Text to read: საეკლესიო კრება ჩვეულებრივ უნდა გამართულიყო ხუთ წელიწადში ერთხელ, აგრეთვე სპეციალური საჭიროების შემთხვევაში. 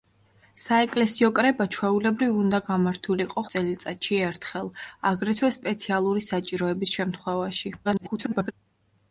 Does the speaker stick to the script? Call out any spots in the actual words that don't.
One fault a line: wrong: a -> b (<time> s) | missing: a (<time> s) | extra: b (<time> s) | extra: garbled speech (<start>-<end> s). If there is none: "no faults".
missing: ხუთ (3.5 s)
extra: garbled speech (7.8-8.5 s)